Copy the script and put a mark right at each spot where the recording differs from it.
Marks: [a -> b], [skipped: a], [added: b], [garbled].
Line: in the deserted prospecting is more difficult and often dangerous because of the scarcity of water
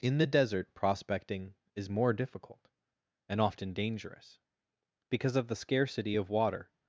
in the [deserted -> desert] prospecting is more difficult and often dangerous because of the scarcity of water